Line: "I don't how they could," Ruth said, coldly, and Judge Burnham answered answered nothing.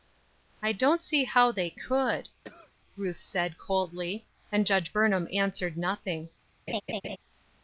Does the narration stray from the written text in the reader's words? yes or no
yes